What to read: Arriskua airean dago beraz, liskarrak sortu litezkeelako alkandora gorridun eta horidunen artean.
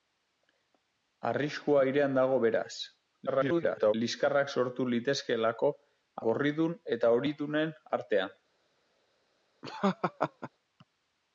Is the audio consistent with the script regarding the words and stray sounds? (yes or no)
no